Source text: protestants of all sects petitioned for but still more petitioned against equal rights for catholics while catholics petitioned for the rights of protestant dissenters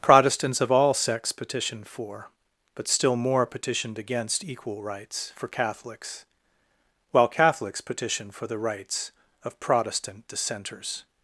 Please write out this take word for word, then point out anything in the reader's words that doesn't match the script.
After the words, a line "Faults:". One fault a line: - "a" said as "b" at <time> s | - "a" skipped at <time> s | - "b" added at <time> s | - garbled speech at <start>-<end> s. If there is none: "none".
protestants of all sects petitioned for but still more petitioned against equal rights for catholics while catholics petitioned for the rights of protestant dissenters
Faults:
none